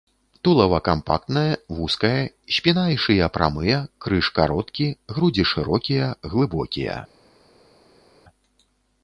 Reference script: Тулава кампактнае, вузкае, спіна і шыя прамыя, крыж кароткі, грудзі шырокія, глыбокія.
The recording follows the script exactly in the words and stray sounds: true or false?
true